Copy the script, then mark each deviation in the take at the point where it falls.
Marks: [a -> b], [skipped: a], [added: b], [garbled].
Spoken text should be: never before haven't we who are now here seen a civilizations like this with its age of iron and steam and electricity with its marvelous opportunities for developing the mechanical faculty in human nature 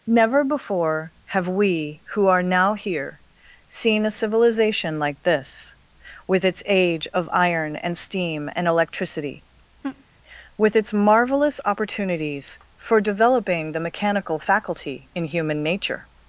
never before [haven't -> have] we who are now here seen a [civilizations -> civilization] like this with its age of iron and steam and electricity with its marvelous opportunities for developing the mechanical faculty in human nature